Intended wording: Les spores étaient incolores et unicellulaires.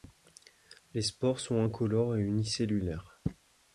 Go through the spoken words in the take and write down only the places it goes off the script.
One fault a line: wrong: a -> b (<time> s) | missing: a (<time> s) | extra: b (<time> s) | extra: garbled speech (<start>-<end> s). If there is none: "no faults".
wrong: étaient -> sont (1.4 s)